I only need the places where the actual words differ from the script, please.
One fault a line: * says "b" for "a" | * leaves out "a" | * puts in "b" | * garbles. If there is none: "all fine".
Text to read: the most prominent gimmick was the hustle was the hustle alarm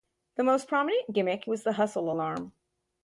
* leaves out "was the hustle"